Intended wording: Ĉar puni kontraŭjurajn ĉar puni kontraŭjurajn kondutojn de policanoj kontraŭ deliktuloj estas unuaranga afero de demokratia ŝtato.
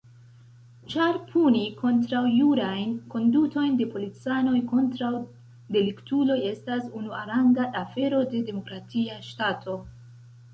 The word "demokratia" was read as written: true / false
true